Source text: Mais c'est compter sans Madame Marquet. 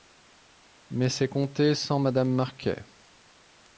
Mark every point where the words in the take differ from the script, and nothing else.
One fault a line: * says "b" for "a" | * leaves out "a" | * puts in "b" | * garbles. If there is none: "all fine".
all fine